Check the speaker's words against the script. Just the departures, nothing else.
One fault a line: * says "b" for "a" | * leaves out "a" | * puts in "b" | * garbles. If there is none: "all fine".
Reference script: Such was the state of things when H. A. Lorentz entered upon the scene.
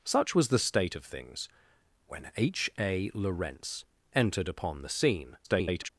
* garbles